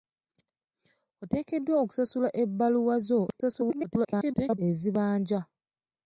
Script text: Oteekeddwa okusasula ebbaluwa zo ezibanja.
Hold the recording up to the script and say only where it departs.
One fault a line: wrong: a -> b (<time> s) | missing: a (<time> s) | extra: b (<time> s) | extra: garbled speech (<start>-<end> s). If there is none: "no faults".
extra: garbled speech (3.4-4.6 s)